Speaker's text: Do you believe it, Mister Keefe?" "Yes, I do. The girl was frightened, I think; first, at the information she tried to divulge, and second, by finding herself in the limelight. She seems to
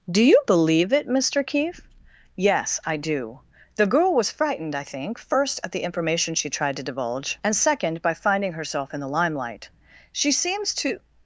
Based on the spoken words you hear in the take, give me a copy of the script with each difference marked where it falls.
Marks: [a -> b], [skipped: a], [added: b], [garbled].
Do you believe it, Mister Keefe?" "Yes, I do. The girl was frightened, I think; first, at the information she tried to divulge, and second, by finding herself in the limelight. She seems to